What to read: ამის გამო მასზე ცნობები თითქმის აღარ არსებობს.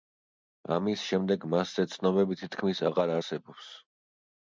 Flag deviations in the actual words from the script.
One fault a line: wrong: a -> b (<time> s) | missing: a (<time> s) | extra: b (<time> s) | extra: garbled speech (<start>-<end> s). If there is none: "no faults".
wrong: გამო -> შემდეგ (1.1 s)